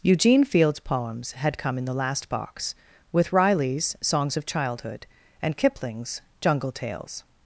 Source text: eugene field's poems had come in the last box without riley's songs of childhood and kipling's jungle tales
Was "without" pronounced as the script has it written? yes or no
no